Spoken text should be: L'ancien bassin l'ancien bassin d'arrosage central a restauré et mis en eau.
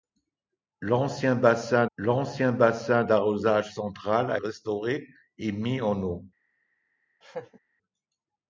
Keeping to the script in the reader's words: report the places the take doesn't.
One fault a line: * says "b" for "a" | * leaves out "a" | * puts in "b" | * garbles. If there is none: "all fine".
all fine